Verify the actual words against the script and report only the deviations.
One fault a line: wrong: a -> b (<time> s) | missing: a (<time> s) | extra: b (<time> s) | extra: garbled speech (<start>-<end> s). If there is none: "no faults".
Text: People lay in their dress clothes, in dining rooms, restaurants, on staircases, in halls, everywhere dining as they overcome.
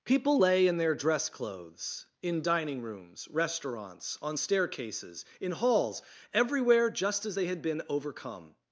wrong: dining -> just (6.9 s)
extra: had been (7.4 s)